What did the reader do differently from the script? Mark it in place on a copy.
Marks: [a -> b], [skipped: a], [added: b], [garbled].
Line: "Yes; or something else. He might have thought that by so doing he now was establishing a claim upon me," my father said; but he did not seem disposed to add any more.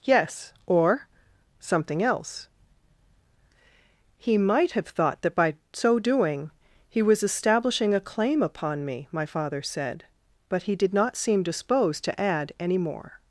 "Yes; or something else. He might have thought that by so doing he [skipped: now] was establishing a claim upon me," my father said; but he did not seem disposed to add any more.